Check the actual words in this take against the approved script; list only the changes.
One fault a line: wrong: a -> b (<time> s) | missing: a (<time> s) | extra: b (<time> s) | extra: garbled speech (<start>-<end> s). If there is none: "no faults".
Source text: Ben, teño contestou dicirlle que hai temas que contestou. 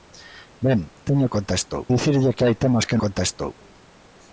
no faults